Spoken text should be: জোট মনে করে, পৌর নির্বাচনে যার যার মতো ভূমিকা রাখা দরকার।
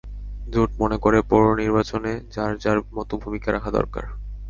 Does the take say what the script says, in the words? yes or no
yes